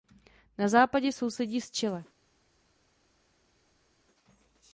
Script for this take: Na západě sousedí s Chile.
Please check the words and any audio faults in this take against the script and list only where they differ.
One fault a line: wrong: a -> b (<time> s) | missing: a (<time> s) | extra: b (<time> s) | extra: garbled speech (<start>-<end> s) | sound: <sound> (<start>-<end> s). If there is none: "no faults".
no faults